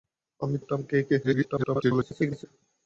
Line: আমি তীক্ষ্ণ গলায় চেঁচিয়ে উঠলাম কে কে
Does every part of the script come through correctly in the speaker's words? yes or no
no